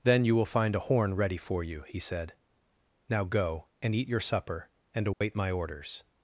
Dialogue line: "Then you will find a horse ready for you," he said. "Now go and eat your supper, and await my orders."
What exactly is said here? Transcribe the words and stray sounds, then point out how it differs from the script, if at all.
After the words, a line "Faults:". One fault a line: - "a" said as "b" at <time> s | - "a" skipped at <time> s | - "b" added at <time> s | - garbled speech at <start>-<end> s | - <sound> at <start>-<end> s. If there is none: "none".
"Then you will find a horn ready for you," he said. "Now go and eat your supper, and await my orders."
Faults:
- "horse" said as "horn" at 0.9 s
- dropout at 5.1-5.2 s